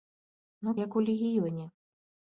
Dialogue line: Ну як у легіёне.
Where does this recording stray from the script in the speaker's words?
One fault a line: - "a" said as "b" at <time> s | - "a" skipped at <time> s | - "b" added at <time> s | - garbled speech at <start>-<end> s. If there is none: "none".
none